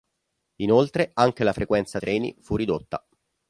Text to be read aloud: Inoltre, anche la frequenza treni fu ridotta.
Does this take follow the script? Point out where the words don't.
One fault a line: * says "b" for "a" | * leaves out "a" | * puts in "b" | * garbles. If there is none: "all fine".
all fine